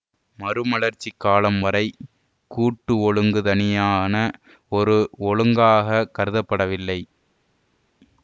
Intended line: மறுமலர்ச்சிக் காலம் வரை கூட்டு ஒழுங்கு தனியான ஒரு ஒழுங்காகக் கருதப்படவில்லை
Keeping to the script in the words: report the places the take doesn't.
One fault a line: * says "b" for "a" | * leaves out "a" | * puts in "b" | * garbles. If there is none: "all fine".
all fine